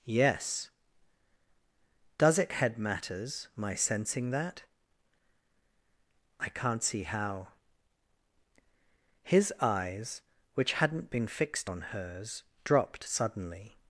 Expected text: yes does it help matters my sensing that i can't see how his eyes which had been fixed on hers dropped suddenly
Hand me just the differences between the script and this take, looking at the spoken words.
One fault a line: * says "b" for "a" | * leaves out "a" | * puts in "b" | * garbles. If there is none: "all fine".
* says "head" for "help"
* says "hadn't" for "had"